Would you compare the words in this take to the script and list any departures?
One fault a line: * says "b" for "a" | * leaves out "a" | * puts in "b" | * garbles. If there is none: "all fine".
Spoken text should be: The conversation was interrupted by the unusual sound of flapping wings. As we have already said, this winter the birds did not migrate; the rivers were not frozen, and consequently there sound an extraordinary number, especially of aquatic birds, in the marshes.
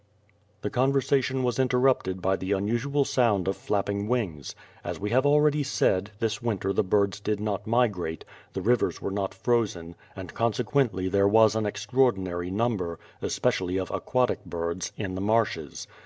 * says "was" for "sound"